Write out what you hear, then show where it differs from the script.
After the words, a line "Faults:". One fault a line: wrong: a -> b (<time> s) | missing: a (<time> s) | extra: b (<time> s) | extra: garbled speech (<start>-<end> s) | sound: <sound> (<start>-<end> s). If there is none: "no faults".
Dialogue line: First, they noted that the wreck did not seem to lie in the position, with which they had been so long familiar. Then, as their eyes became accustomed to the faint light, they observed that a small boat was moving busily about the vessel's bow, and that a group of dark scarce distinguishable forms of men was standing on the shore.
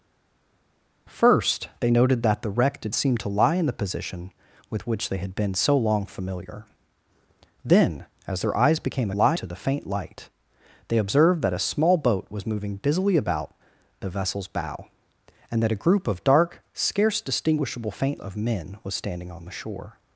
First, they noted that the wreck did seem to lie in the position, with which they had been so long familiar. Then, as their eyes became lie to the faint light, they observed that a small boat was moving busily about the vessel's bow, and that a group of dark scarce distinguishable faint of men was standing on the shore.
Faults:
missing: not (2.9 s)
wrong: accustomed -> lie (9.1 s)
wrong: forms -> faint (17.9 s)